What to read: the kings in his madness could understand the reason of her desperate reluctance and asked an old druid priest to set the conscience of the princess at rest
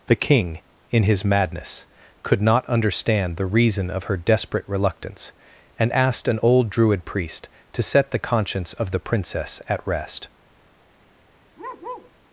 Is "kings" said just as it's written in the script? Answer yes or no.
no